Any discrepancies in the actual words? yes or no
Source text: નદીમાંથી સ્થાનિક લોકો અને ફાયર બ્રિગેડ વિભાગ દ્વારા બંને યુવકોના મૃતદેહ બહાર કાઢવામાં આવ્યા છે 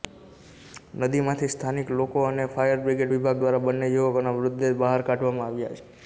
no